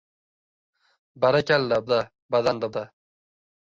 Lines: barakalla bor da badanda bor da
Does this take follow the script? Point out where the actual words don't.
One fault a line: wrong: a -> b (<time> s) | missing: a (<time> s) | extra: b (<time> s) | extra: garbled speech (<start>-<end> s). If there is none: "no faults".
missing: bor (1.8 s)
missing: bor (2.7 s)